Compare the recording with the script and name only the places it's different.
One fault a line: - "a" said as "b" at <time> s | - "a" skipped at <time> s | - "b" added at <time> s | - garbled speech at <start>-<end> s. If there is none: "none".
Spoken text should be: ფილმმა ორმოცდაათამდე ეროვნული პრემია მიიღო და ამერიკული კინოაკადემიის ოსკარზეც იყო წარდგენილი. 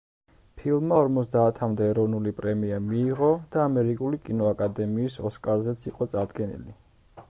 none